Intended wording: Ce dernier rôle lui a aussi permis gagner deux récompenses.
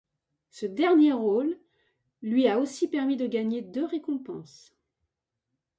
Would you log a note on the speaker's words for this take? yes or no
yes